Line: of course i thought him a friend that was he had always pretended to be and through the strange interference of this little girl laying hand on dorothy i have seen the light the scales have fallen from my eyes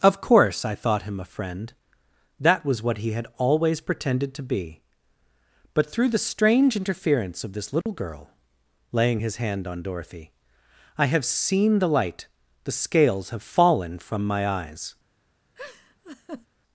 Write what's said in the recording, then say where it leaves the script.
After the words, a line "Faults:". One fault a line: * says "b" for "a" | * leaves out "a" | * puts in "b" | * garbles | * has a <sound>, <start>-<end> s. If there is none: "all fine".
of course i thought him a friend that was what he had always pretended to be but through the strange interference of this little girl laying his hand on dorothy i have seen the light the scales have fallen from my eyes
Faults:
* puts in "what"
* says "but" for "and"
* has a dropout, 7.8-7.9 s
* puts in "his"
* has a laugh, 15.5-16.5 s